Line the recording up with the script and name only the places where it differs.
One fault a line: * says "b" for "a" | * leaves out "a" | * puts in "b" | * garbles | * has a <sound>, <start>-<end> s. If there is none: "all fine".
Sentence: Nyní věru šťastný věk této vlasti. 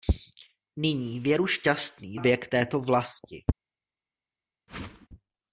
* has a whoosh, 4.7-5.1 s